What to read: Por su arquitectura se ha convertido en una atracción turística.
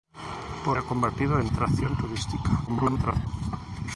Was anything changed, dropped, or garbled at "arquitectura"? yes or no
yes